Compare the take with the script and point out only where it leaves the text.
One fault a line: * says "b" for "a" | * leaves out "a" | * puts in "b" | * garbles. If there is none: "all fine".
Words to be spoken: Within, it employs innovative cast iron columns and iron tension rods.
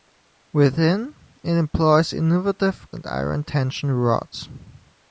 * leaves out "cast iron columns"